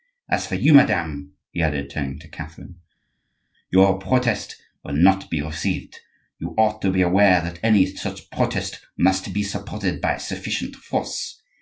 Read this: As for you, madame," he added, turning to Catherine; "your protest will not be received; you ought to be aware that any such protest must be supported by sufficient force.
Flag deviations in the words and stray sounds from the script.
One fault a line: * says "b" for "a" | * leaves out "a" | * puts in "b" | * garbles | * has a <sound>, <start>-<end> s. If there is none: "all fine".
all fine